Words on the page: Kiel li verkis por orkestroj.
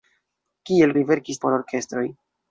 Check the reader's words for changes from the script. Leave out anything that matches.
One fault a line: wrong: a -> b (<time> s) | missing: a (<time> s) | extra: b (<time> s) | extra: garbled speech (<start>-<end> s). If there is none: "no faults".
no faults